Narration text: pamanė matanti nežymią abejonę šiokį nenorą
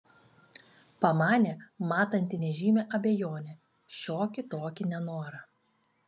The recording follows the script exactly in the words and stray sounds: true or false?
false